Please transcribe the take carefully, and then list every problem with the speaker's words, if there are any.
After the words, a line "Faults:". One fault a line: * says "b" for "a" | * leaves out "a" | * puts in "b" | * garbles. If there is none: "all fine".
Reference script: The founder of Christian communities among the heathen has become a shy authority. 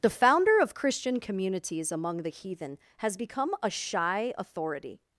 The founder of Christian communities among the heathen has become a shy authority.
Faults:
all fine